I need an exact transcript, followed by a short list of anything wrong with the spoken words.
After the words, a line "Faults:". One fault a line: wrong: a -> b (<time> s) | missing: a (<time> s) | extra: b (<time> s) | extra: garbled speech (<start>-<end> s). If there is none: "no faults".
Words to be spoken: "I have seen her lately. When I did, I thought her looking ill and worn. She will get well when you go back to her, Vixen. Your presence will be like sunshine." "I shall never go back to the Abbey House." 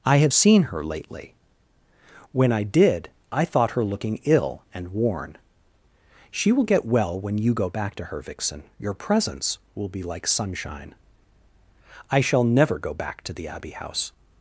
"I have seen her lately. When I did, I thought her looking ill and worn. She will get well when you go back to her, Vixen. Your presence will be like sunshine." "I shall never go back to the Abbey House."
Faults:
no faults